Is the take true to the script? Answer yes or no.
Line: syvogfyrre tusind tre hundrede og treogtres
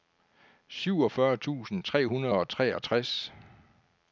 yes